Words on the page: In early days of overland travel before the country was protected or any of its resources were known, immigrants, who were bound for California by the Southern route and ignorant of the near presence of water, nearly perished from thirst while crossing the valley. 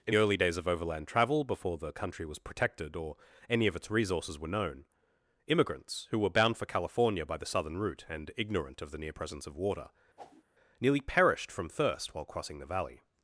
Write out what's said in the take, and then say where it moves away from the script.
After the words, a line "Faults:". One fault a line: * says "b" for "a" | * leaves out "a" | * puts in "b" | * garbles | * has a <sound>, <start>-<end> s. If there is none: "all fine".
In early days of overland travel before the country was protected or any of its resources were known, immigrants, who were bound for California by the Southern route and ignorant of the near presence of water, nearly perished from thirst while crossing the valley.
Faults:
* has a whoosh, 10.2-10.4 s